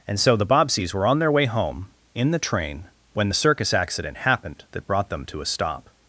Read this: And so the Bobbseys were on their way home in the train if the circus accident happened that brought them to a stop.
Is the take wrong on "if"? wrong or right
wrong